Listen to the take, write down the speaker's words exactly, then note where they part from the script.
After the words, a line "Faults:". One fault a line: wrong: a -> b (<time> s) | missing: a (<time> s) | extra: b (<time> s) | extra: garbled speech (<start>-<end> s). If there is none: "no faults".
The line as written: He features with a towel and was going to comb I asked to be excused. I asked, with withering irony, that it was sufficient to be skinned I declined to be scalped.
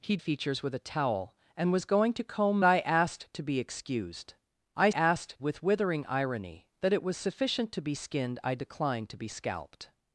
He features with a towel and was going to comb I asked to be excused. I asked, with withering irony, that it was sufficient to be skinned I declined to be scalped.
Faults:
no faults